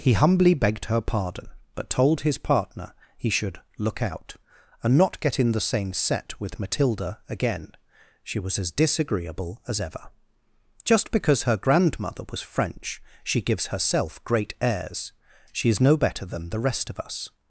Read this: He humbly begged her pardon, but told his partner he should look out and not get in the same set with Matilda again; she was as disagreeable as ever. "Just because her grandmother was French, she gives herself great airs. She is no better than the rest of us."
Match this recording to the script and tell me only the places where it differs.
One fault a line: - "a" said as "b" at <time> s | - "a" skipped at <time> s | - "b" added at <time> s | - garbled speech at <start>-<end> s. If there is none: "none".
none